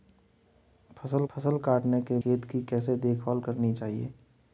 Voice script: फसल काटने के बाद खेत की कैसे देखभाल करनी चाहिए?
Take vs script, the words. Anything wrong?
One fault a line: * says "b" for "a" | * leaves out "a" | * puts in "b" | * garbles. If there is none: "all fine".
* puts in "फसल"
* leaves out "बाद"